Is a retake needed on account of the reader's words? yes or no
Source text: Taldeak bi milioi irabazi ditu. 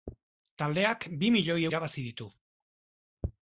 no